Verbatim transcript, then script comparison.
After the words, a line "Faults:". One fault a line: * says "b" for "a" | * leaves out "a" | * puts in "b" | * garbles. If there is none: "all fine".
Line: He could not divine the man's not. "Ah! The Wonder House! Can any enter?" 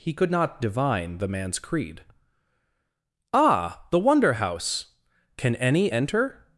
He could not divine the man's creed. "Ah! The Wonder House! Can any enter?"
Faults:
* says "creed" for "not"